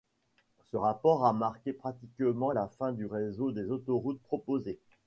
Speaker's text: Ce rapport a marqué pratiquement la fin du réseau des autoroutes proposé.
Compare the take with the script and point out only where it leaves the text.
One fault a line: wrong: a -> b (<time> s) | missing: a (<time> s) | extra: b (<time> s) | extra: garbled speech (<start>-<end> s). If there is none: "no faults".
no faults